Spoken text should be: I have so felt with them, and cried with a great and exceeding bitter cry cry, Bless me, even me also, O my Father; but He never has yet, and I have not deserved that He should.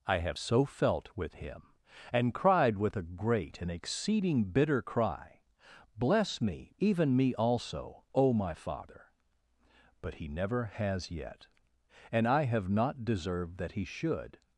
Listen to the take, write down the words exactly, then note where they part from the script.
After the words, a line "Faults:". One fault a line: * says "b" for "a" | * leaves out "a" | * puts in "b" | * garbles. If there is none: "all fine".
I have so felt with him, and cried with a great and exceeding bitter cry, Bless me, even me also, O my Father; but He never has yet, and I have not deserved that He should.
Faults:
* says "him" for "them"
* leaves out "cry"